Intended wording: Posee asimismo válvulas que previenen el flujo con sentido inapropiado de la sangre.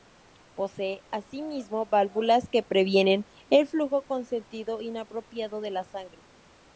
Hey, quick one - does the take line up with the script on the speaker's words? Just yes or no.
yes